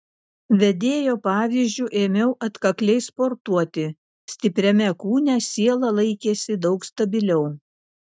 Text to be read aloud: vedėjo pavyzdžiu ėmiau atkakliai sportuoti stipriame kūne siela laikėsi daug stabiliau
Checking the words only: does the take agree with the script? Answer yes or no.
yes